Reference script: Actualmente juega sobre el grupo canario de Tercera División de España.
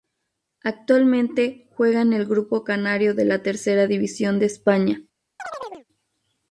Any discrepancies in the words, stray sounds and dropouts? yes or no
yes